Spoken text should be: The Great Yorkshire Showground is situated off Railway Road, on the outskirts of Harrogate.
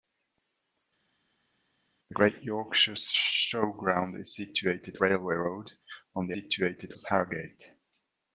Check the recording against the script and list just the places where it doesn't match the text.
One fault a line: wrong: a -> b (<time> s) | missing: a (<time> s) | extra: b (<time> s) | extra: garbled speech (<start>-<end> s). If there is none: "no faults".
missing: off (5.0 s)
wrong: outskirts -> situated (6.3 s)